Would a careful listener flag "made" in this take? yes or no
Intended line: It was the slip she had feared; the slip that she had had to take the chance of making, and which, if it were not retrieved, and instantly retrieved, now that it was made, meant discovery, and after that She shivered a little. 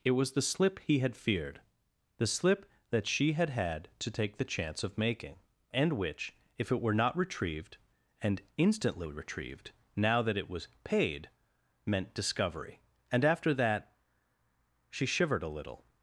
yes